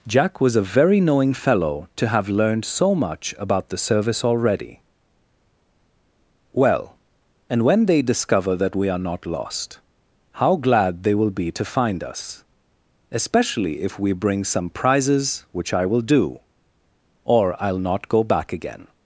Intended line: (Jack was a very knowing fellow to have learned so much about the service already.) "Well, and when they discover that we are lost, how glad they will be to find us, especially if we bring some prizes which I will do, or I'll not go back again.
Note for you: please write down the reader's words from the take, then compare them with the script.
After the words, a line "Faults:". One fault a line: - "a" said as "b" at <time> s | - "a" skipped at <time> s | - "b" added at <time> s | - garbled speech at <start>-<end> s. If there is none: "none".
(Jack was a very knowing fellow to have learned so much about the service already.) "Well, and when they discover that we are not lost, how glad they will be to find us, especially if we bring some prizes which I will do, or I'll not go back again.
Faults:
- "not" added at 9.0 s